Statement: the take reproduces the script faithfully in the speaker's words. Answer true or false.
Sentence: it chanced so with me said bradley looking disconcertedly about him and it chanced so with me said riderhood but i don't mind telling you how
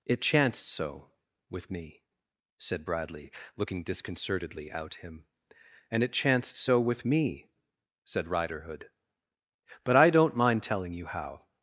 false